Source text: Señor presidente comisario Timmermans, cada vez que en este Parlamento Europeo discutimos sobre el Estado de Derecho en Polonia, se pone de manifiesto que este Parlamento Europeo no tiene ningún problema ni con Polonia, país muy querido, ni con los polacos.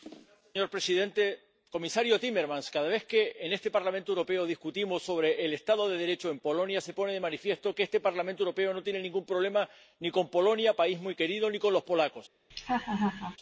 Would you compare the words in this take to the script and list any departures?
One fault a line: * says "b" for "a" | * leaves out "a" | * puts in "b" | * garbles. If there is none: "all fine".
all fine